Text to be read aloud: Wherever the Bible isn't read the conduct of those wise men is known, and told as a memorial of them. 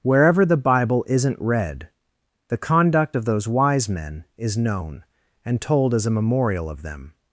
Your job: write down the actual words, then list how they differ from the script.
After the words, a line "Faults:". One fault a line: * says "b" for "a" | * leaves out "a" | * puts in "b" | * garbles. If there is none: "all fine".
Wherever the Bible isn't read the conduct of those wise men is known, and told as a memorial of them.
Faults:
all fine